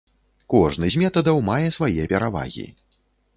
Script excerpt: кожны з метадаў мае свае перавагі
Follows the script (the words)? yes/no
yes